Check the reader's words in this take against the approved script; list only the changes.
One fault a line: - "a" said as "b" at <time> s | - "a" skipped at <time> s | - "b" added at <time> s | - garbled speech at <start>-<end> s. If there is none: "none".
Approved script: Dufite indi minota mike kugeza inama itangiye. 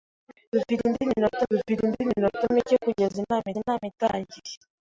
- "dufite indi minota" added at 1.5 s
- "inama" added at 3.6 s